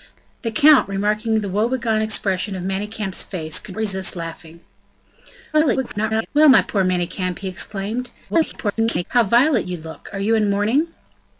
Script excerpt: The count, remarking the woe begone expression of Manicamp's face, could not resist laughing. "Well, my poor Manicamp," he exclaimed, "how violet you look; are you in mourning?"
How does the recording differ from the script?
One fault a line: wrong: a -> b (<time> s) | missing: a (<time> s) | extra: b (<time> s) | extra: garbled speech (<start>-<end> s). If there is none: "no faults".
missing: not (3.8 s)
extra: garbled speech (5.5-6.3 s)
extra: garbled speech (8.3-9.0 s)